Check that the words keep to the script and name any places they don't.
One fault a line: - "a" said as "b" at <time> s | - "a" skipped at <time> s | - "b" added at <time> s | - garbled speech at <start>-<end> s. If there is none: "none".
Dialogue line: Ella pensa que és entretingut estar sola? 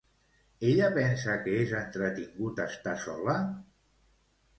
none